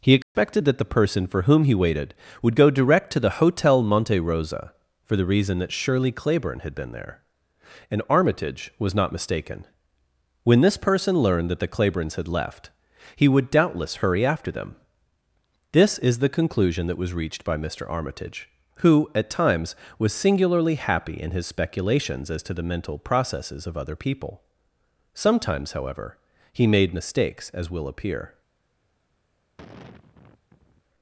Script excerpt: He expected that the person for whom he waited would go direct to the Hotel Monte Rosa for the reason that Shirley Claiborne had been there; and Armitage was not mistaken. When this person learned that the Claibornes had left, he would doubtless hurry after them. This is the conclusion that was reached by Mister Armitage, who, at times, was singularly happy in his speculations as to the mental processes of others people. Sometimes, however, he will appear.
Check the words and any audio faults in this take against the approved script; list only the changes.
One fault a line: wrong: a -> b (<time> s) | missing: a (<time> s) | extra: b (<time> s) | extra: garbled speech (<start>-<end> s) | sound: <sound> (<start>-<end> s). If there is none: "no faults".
sound: dropout (0.2-0.3 s)
wrong: others -> other (23.8 s)
extra: made mistakes as (26.7 s)
sound: sigh (29.6-30.8 s)